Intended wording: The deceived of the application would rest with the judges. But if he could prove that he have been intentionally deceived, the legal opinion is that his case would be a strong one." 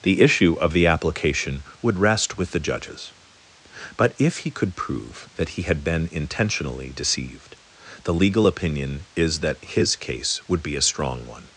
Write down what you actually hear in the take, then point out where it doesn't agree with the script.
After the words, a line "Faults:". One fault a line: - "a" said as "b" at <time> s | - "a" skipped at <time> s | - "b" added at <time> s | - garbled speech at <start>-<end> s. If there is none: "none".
The issue of the application would rest with the judges. But if he could prove that he had been intentionally deceived, the legal opinion is that his case would be a strong one."
Faults:
- "deceived" said as "issue" at 0.2 s
- "have" said as "had" at 5.6 s